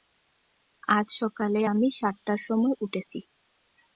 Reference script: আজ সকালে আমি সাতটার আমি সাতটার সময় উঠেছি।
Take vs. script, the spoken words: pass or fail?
fail